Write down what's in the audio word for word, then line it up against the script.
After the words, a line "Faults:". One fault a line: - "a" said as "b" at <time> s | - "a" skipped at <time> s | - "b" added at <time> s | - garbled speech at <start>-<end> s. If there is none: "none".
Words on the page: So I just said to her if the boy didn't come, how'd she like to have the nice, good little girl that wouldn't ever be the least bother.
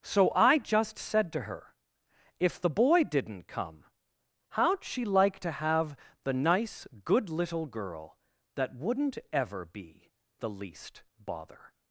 So I just said to her if the boy didn't come, how'd she like to have the nice, good little girl that wouldn't ever be the least bother.
Faults:
none